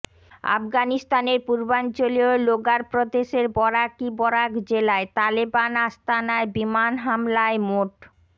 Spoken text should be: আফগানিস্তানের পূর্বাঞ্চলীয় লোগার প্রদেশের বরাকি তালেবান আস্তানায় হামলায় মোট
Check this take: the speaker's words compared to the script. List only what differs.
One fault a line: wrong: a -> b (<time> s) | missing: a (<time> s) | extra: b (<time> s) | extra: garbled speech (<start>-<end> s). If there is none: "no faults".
extra: বরাক জেলায় (4.2 s)
extra: বিমান (6.5 s)